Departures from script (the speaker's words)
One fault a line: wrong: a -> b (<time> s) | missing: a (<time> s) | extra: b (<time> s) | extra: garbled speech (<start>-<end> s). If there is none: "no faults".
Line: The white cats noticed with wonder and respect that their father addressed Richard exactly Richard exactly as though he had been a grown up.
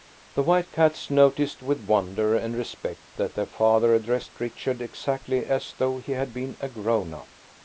missing: Richard exactly (5.5 s)